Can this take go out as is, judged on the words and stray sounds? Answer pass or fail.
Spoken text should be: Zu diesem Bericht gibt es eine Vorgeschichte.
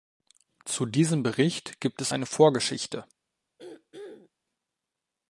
fail